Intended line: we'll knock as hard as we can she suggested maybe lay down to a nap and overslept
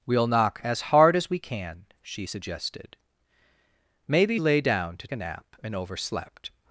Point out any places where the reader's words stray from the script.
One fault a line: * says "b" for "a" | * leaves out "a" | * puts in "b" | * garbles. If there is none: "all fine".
all fine